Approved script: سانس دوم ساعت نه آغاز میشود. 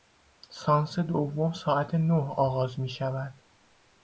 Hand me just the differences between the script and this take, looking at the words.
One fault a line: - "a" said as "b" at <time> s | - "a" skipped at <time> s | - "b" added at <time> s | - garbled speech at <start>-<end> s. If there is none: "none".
none